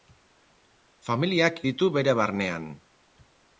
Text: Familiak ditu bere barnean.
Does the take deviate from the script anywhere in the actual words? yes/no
no